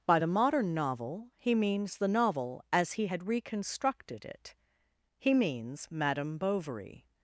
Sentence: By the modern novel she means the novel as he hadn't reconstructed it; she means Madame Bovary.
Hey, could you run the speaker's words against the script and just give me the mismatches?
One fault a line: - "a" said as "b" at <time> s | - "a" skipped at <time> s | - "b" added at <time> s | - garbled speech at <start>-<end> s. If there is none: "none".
- "she" said as "he" at 1.4 s
- "hadn't" said as "had" at 3.0 s
- "she" said as "he" at 5.2 s